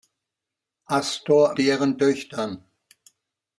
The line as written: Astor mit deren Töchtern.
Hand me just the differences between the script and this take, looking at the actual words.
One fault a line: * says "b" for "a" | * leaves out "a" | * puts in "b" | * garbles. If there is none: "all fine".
* leaves out "mit"